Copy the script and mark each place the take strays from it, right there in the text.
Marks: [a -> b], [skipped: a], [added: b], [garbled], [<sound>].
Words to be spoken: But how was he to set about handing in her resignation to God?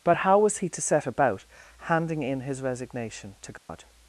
But how was he to set about handing in [her -> his] resignation to God? [dropout]